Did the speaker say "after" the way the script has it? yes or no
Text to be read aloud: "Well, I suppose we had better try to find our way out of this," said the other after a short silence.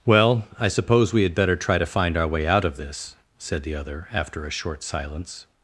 yes